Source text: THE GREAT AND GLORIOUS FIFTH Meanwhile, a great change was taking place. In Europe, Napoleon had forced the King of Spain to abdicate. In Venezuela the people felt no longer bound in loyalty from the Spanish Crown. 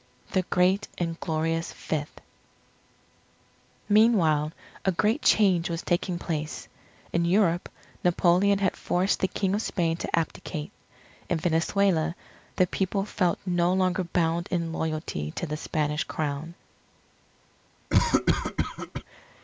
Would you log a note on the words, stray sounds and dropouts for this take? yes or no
yes